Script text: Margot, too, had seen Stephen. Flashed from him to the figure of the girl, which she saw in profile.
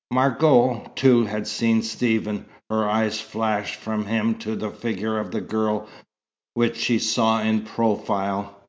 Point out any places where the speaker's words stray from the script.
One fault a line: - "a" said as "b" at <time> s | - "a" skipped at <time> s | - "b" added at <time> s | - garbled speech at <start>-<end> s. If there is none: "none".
- "Her eyes" added at 2.7 s